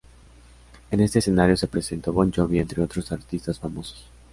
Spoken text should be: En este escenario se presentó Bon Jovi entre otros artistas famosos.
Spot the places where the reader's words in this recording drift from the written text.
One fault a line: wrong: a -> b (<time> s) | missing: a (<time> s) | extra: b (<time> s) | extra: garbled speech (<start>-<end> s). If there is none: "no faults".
no faults